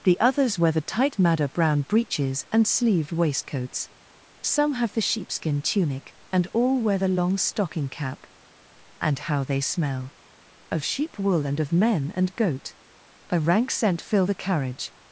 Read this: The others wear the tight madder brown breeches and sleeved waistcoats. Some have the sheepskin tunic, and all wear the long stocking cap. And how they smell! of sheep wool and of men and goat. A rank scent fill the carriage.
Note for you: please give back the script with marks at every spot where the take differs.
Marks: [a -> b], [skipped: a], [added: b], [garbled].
The others wear the tight madder brown breeches and sleeved waistcoats. Some have the sheepskin tunic, and all wear the long stocking cap. And how they smell! of sheep wool and of men and goat. A rank scent fill the carriage.